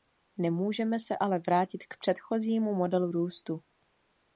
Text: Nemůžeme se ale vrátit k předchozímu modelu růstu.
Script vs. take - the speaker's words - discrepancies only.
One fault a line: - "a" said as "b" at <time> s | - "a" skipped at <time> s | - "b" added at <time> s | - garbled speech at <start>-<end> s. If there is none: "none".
none